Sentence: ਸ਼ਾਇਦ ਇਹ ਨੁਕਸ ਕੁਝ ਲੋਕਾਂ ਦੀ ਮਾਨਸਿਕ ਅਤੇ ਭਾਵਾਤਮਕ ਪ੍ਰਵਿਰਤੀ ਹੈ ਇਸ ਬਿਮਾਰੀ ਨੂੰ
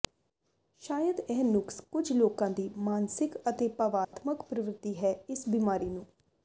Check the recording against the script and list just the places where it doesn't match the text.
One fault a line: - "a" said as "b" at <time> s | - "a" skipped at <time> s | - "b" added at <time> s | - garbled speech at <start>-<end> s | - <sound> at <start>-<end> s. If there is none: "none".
- dropout at 4.0-4.1 s